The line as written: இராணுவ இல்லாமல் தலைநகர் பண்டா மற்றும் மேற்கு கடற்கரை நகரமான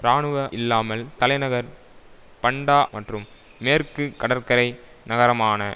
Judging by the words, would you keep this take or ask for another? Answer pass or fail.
pass